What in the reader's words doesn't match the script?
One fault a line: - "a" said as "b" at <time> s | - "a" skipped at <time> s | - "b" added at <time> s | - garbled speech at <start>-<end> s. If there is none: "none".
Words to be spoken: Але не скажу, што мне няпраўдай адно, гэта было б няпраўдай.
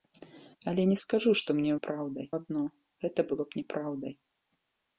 none